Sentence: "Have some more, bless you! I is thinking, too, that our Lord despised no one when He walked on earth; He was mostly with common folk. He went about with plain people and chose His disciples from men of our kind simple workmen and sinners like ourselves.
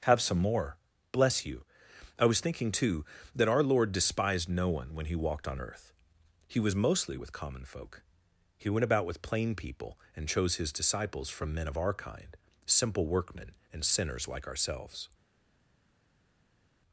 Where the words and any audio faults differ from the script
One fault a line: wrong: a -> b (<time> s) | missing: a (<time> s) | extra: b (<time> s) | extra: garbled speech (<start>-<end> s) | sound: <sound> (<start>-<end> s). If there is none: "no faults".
wrong: is -> was (2.2 s)